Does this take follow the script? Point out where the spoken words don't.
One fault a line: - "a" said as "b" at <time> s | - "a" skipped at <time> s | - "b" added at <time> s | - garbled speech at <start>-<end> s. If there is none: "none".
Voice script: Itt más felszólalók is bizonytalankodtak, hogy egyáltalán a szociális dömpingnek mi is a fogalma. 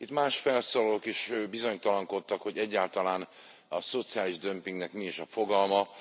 none